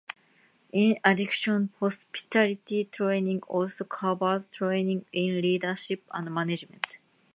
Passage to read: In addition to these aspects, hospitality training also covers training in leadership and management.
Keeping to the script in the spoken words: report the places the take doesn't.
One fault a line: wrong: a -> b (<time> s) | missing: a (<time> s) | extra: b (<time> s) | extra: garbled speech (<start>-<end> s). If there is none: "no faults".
missing: to these aspects (1.7 s)